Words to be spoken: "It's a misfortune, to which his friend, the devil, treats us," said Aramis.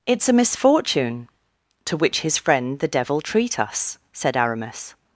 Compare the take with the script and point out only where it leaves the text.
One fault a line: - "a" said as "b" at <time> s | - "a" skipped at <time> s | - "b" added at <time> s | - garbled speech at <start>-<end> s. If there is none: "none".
- "treats" said as "treat" at 3.2 s